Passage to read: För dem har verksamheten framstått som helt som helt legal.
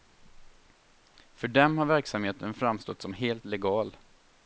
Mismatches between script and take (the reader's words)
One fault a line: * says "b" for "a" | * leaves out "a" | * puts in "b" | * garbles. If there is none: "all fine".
* leaves out "som helt"